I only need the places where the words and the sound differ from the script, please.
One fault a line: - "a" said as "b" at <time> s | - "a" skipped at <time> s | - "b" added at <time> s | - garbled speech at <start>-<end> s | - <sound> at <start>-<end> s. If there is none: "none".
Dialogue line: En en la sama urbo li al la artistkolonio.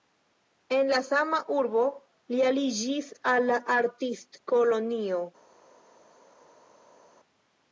- "en" skipped at 0.9 s
- "aliĝis" added at 2.5 s